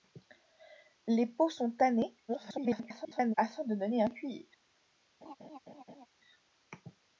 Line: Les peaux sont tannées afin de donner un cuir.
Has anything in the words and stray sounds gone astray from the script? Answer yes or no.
yes